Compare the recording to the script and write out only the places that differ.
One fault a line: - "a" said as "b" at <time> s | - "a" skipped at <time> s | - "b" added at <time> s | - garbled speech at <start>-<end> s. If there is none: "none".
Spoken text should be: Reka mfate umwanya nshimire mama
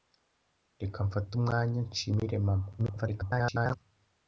- garbled speech at 2.8-3.8 s